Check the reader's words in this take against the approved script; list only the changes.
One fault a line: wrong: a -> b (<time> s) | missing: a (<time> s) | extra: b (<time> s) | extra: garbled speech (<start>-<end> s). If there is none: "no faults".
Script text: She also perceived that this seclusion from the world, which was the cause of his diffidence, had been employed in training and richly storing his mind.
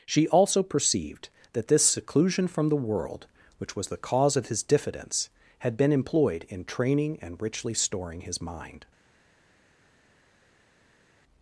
no faults